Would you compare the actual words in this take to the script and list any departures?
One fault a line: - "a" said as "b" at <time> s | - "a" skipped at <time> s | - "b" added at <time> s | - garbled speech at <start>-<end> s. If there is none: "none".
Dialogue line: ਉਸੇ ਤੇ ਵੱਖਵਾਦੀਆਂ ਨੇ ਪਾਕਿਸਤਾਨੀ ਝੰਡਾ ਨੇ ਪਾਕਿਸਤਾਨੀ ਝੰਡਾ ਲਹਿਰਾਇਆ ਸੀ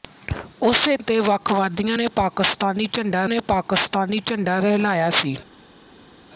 none